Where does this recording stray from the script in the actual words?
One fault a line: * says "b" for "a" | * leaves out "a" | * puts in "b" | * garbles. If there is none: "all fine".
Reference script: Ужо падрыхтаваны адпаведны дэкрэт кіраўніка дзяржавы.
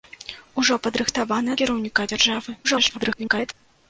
* leaves out "адпаведны дэкрэт"
* garbles